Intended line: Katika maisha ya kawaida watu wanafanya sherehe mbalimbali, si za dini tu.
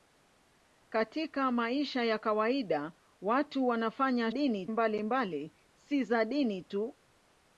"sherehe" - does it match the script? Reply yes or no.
no